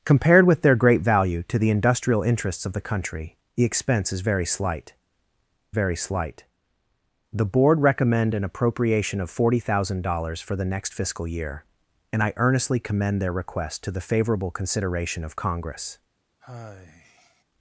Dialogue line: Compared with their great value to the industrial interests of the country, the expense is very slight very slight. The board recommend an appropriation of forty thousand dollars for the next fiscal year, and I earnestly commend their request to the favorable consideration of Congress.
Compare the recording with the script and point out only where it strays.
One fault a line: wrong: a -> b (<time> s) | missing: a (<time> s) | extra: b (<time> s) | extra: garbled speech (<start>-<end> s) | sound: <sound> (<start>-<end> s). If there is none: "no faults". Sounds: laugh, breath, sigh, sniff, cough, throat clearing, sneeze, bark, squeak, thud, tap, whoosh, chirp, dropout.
sound: sigh (16.4-17.4 s)